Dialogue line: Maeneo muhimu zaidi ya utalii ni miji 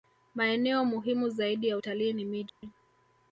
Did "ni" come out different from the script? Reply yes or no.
no